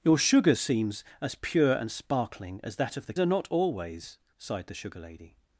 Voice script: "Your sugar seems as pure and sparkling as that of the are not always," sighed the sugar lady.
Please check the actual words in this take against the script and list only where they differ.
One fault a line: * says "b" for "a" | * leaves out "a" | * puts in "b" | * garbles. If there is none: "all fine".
all fine